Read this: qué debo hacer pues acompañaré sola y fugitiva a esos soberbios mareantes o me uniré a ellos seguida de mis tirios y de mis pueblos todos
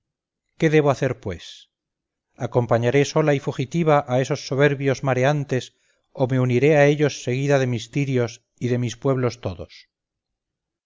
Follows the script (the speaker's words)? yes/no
yes